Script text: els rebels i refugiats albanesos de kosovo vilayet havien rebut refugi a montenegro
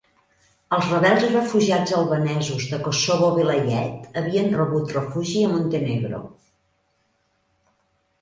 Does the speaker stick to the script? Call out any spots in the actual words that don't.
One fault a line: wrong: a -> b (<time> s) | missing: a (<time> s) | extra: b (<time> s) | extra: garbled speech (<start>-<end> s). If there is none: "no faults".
no faults